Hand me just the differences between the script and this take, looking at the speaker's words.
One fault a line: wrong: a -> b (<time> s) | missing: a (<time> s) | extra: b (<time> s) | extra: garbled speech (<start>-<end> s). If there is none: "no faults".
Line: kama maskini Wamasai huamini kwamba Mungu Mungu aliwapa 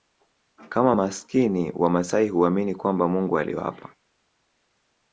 missing: Mungu (3.4 s)